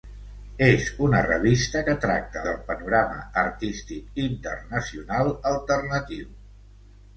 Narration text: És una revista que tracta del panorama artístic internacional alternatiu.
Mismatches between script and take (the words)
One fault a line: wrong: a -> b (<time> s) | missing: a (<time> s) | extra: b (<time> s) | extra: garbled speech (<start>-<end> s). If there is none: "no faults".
no faults